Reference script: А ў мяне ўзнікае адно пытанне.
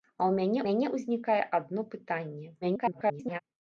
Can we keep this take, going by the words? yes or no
no